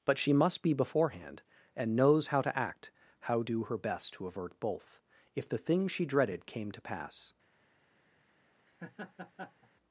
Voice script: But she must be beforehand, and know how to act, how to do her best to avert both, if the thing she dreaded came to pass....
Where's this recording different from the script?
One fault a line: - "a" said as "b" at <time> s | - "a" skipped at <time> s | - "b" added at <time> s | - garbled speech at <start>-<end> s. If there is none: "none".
- "know" said as "knows" at 1.9 s
- "to" skipped at 3.4 s